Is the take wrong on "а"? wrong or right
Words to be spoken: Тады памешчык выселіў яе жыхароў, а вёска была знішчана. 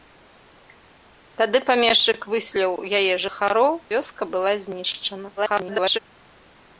wrong